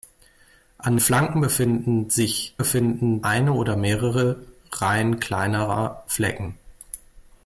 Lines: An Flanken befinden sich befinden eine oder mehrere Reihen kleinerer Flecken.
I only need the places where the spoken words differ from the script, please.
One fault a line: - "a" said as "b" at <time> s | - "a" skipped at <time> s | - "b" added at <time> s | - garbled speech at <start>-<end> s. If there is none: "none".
none